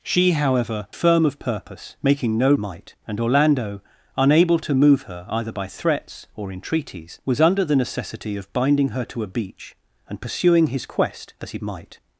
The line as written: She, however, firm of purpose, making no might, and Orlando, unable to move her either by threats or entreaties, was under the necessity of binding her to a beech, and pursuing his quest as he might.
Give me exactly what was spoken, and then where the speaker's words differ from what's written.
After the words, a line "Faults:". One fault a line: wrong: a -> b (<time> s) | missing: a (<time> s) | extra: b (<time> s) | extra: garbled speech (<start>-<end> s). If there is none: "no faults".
She, however, firm of purpose, making no might, and Orlando, unable to move her either by threats or entreaties, was under the necessity of binding her to a beech, and pursuing his quest as he might.
Faults:
no faults